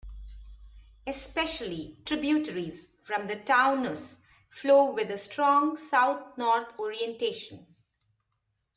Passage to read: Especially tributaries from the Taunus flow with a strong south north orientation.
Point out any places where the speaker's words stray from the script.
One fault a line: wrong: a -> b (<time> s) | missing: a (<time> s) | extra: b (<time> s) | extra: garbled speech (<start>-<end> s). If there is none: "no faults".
no faults